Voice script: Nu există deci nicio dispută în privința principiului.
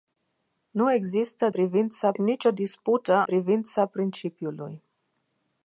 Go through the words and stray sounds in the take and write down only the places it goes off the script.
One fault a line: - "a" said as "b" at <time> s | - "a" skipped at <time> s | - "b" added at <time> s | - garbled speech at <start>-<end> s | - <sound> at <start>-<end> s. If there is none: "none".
- "deci" said as "privința" at 1.5 s
- "în" skipped at 3.2 s